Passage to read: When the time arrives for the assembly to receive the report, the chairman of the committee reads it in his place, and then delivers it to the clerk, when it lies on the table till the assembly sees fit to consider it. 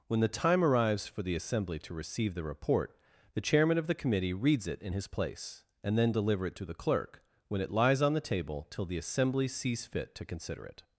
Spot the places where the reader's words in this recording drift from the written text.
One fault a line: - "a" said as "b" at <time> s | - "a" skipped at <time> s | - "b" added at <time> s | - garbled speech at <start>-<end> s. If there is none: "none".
- "delivers" said as "deliver" at 6.1 s